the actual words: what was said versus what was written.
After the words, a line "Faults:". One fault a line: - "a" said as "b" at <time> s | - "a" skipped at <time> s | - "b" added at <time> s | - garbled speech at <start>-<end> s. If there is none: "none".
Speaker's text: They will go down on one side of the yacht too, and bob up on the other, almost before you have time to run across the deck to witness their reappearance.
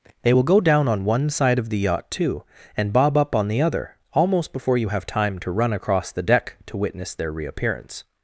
They will go down on one side of the yacht too, and bob up on the other, almost before you have time to run across the deck to witness their reappearance.
Faults:
none